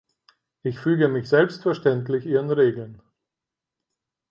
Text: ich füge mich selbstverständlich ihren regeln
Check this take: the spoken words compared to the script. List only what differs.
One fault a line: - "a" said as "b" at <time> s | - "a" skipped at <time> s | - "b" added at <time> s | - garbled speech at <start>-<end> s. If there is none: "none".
none